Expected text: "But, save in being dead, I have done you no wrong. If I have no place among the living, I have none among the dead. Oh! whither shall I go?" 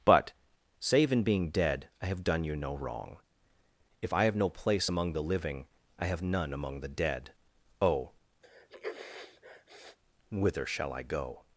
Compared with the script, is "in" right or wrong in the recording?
right